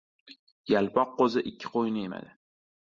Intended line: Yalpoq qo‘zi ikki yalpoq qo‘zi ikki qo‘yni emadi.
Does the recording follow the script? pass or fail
fail